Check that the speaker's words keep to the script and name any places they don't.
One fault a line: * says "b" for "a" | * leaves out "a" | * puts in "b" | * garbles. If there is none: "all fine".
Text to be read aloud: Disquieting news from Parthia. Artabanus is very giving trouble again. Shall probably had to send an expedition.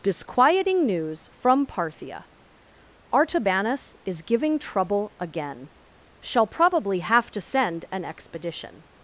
* leaves out "very"
* says "have" for "had"